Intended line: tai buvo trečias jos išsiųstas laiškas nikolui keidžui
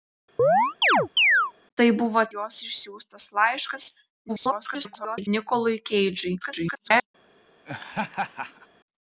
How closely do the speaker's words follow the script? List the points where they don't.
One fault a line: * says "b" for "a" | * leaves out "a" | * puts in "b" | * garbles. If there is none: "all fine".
* leaves out "trečias"
* garbles
* garbles